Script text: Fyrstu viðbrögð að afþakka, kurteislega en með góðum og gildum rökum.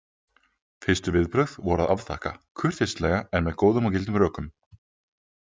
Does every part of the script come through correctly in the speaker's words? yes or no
no